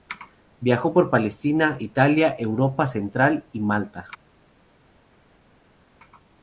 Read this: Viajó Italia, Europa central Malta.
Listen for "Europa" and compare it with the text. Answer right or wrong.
right